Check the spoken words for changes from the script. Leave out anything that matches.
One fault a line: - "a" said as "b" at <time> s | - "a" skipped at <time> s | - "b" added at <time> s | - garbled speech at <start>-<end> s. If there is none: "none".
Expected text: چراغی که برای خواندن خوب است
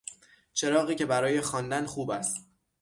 none